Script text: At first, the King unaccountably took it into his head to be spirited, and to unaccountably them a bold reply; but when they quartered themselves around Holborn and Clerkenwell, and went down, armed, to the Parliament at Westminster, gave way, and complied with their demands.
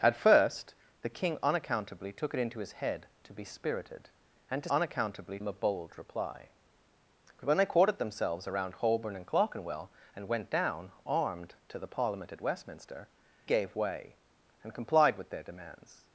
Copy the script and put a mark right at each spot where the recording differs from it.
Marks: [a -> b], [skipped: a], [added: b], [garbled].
At first, the King unaccountably took it into his head to be spirited, and to unaccountably them a bold reply; but when they quartered themselves around Holborn and Clerkenwell, and went down, armed, to the Parliament at Westminster, gave way, and complied with their demands.